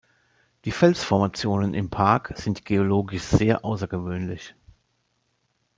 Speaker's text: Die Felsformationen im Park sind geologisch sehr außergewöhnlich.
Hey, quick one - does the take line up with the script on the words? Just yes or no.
yes